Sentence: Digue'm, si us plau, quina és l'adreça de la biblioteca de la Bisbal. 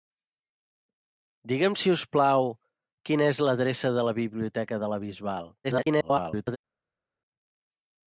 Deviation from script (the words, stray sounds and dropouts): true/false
true